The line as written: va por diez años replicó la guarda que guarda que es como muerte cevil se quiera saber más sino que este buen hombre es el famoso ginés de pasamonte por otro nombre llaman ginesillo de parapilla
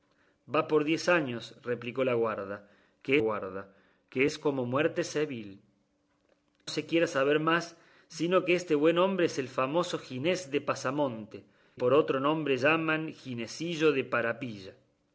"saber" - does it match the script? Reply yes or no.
yes